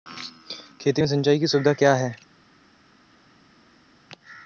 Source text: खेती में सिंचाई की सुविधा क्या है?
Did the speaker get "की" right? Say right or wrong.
right